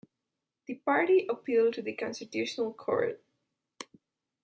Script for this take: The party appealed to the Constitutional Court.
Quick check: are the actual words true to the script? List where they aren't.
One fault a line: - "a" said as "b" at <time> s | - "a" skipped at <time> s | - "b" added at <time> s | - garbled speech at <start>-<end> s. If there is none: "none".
none